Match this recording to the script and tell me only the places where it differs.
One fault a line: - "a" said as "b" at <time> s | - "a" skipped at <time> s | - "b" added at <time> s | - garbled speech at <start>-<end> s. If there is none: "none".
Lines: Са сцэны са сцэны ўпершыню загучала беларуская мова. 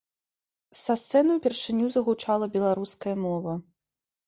- "са сцэны" skipped at 1.4 s